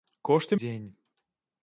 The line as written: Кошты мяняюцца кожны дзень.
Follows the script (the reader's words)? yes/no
no